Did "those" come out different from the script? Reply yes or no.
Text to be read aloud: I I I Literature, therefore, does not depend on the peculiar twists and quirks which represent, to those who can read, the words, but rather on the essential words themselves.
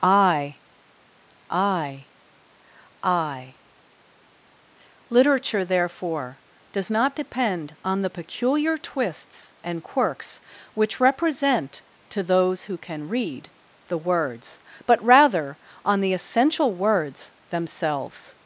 no